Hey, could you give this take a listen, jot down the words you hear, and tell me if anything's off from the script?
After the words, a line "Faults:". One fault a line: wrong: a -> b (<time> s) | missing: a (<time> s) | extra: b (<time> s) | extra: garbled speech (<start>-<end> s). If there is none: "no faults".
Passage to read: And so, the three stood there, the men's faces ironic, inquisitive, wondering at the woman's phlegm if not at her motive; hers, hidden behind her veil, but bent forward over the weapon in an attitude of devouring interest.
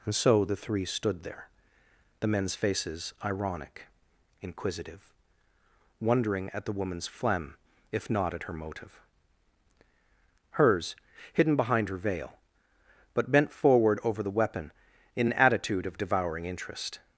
And so, the three stood there, the men's faces ironic, inquisitive, wondering at the woman's phlegm if not at her motive; hers, hidden behind her veil, but bent forward over the weapon in an attitude of devouring interest.
Faults:
no faults